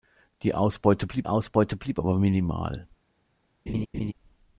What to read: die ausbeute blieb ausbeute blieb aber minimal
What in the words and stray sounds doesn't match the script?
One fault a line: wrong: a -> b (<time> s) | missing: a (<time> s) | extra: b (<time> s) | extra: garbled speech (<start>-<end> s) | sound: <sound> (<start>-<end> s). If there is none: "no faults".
sound: laugh (3.7-4.1 s)